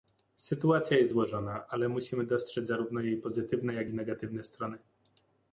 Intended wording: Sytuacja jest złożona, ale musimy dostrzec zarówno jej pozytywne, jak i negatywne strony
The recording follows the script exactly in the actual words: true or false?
true